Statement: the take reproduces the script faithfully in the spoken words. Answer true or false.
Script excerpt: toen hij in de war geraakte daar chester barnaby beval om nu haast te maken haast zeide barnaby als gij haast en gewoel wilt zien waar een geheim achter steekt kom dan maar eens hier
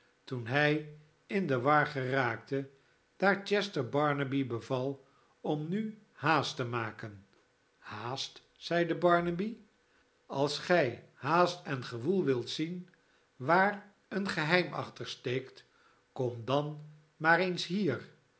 true